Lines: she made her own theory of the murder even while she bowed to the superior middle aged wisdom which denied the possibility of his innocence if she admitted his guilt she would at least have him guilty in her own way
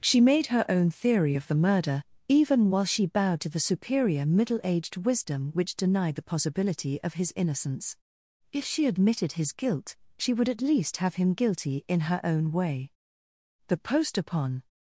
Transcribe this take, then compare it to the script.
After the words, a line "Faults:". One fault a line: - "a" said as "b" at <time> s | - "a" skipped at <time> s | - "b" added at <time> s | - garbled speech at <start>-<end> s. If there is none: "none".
she made her own theory of the murder even while she bowed to the superior middle aged wisdom which denied the possibility of his innocence if she admitted his guilt she would at least have him guilty in her own way the post upon
Faults:
- "the post upon" added at 13.7 s